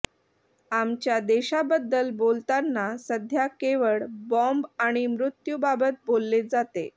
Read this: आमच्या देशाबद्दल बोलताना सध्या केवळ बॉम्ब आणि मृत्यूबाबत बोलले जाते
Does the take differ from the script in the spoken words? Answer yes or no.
no